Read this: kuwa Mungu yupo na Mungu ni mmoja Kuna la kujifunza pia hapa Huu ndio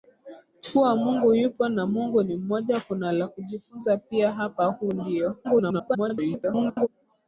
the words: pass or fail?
fail